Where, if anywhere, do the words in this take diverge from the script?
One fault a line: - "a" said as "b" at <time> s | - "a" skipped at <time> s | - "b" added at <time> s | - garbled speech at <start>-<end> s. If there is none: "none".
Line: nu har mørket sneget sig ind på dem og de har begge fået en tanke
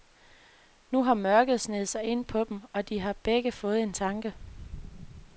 none